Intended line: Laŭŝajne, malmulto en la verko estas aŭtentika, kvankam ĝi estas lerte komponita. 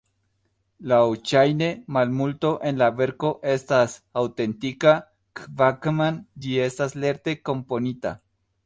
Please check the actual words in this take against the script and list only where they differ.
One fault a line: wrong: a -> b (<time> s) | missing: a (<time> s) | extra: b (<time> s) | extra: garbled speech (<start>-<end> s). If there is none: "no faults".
no faults